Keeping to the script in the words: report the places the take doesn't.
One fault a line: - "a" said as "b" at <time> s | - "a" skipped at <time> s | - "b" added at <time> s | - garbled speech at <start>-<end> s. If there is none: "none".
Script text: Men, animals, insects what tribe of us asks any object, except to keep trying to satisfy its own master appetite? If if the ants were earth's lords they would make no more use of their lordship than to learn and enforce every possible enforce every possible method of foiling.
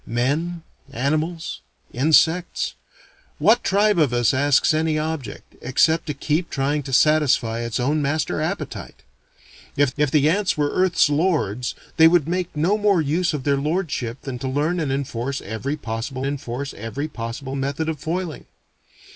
none